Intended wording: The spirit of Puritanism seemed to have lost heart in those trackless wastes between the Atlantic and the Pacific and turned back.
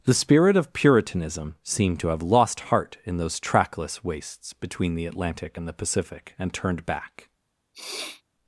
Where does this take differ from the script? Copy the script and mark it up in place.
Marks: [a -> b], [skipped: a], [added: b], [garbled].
The spirit of Puritanism seemed to have lost heart in those trackless wastes between the Atlantic and the Pacific and turned back.